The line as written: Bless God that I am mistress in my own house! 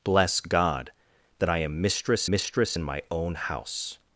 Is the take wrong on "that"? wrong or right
right